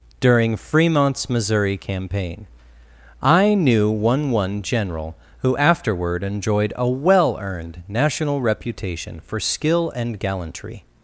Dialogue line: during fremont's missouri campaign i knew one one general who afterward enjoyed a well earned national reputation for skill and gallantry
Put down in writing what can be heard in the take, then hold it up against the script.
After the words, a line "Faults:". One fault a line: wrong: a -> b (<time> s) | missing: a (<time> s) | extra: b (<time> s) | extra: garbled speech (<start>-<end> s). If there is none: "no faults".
during fremont's missouri campaign i knew one one general who afterward enjoyed a well earned national reputation for skill and gallantry
Faults:
no faults